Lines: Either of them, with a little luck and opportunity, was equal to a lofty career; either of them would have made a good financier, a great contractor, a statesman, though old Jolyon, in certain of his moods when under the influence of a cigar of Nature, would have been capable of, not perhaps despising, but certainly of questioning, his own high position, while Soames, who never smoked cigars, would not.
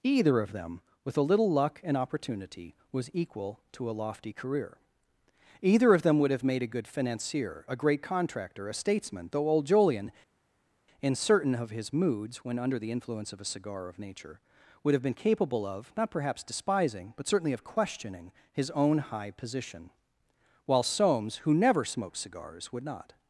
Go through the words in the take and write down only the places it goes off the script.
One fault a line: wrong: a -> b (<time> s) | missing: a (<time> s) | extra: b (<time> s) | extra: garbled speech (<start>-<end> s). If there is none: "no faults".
no faults